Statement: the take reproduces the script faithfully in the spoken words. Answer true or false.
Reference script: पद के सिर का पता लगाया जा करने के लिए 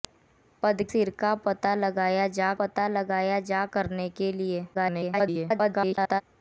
false